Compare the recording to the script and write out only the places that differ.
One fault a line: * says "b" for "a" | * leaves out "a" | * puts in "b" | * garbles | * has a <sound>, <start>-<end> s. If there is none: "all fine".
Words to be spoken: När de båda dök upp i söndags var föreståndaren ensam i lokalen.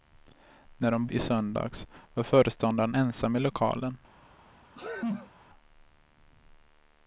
* leaves out "båda dök upp"
* has a sneeze, 4.8-5.3 s